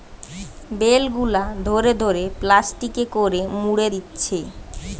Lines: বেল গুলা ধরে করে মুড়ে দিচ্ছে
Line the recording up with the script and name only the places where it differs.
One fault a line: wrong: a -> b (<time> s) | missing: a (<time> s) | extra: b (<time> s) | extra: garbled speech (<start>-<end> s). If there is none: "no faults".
extra: ধরে প্লাস্টিকে (2.0 s)